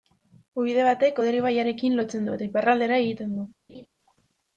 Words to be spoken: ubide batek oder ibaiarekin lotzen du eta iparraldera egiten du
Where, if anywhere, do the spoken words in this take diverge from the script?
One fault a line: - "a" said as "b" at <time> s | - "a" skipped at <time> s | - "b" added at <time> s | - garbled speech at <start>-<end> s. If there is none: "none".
none